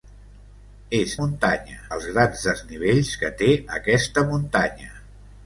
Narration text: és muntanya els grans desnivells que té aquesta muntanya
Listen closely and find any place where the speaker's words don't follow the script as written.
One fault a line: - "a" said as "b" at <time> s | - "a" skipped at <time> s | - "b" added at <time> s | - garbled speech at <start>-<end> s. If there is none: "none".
none